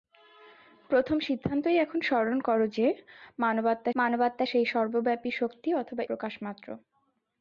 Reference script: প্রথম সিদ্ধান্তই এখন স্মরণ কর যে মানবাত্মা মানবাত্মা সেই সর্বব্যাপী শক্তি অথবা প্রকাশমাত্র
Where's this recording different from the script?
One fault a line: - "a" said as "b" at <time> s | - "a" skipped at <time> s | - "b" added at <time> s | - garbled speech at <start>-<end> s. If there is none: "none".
none